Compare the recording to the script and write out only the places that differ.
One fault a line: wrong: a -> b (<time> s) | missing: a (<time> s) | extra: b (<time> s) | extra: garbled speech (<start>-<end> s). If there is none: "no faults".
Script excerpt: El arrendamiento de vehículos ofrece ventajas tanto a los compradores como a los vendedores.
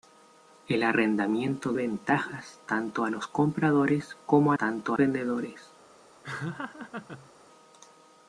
missing: de vehículos ofrece (1.7 s)
wrong: los -> tanto (4.6 s)